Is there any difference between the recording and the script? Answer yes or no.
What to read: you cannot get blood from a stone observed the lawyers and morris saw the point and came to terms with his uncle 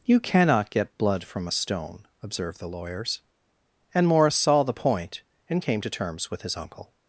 no